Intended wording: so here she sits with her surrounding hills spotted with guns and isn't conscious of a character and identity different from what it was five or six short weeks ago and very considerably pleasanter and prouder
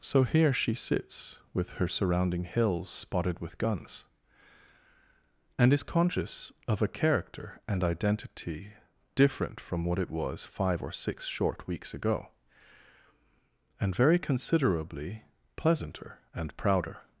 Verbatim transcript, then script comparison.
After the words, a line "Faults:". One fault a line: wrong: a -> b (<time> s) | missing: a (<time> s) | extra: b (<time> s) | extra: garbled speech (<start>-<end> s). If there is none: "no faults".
so here she sits with her surrounding hills spotted with guns and is conscious of a character and identity different from what it was five or six short weeks ago and very considerably pleasanter and prouder
Faults:
wrong: isn't -> is (5.7 s)